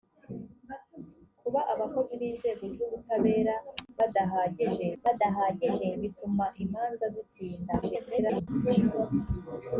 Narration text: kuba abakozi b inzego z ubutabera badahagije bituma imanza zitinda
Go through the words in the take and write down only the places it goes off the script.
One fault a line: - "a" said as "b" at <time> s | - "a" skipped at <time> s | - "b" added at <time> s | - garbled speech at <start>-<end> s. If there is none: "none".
- "badahagije" added at 5.0 s
- garbled speech at 7.8-8.5 s